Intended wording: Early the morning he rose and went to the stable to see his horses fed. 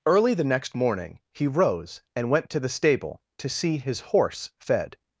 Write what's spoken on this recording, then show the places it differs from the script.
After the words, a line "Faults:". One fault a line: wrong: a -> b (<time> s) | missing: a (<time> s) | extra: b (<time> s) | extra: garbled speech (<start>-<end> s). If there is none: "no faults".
Early the next morning he rose and went to the stable to see his horse fed.
Faults:
extra: next (0.4 s)
wrong: horses -> horse (4.0 s)